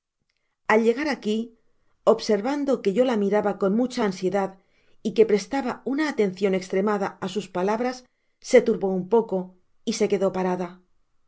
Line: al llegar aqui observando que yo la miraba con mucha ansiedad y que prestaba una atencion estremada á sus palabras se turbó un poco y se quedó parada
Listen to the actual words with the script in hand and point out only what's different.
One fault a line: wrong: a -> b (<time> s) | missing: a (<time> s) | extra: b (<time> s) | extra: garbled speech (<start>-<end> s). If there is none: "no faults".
no faults